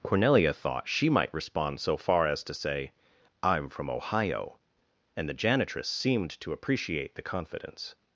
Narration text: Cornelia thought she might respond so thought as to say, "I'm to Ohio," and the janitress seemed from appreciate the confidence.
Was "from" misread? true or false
true